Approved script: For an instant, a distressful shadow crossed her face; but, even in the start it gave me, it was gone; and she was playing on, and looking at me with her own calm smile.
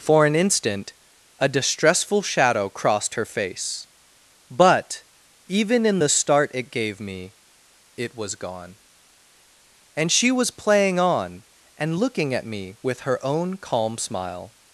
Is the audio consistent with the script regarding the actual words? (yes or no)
yes